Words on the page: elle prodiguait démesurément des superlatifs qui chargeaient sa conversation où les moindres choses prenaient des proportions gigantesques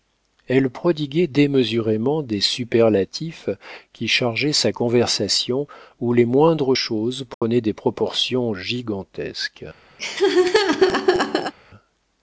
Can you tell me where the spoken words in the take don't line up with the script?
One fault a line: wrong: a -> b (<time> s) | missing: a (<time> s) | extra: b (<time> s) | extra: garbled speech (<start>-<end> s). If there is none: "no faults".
no faults